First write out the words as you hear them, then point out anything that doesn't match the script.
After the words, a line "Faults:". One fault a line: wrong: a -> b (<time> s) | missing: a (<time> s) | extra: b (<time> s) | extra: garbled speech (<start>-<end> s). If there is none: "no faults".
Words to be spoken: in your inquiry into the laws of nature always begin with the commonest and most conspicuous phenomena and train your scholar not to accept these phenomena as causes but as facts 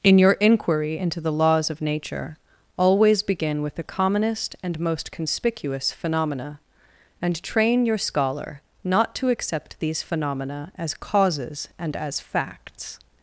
in your inquiry into the laws of nature always begin with the commonest and most conspicuous phenomena and train your scholar not to accept these phenomena as causes and as facts
Faults:
wrong: but -> and (11.8 s)